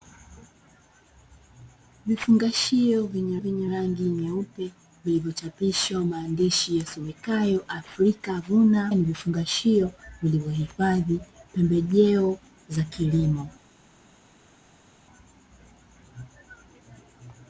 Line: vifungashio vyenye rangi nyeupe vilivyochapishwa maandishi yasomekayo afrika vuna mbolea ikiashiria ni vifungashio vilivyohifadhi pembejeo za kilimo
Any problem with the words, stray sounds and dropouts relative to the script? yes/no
yes